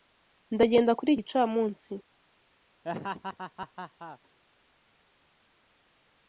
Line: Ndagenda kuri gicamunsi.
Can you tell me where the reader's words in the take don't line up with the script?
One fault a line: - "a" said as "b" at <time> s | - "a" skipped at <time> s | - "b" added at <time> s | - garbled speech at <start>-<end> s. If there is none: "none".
none